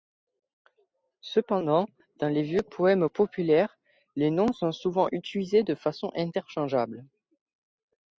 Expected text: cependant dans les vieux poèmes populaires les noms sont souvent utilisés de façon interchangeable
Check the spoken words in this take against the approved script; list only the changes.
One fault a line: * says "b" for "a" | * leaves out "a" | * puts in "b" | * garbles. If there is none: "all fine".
all fine